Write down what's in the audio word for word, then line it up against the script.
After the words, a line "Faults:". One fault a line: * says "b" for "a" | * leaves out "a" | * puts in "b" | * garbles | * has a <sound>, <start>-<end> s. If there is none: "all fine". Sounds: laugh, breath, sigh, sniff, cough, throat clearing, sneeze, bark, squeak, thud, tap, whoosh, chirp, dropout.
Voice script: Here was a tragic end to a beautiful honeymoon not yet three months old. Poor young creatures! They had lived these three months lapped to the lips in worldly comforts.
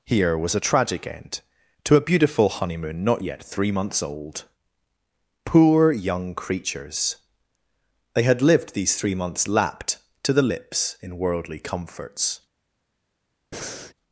Here was a tragic end to a beautiful honeymoon not yet three months old. Poor young creatures! They had lived these three months lapped to the lips in worldly comforts.
Faults:
* has a breath, 13.5-13.9 s